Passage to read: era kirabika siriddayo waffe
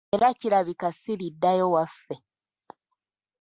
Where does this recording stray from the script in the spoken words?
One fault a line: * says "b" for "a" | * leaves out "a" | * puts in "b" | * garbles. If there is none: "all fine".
all fine